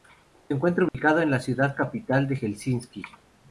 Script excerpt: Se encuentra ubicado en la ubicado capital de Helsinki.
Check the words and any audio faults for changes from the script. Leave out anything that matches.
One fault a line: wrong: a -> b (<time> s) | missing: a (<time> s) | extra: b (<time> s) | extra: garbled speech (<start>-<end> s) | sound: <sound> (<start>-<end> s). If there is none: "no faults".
sound: dropout (0.9-0.9 s)
wrong: ubicado -> ciudad (1.4 s)